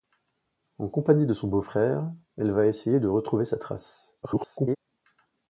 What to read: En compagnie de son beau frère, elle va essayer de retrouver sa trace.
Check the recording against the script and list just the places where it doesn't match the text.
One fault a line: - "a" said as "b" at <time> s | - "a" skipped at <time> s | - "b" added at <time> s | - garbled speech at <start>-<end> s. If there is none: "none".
- garbled speech at 4.2-4.8 s